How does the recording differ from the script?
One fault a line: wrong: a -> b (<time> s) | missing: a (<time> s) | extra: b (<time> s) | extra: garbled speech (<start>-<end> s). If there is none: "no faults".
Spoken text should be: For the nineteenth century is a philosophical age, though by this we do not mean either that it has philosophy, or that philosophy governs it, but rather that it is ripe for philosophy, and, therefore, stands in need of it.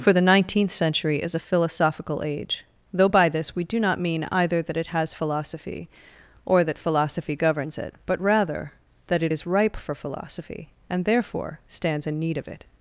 no faults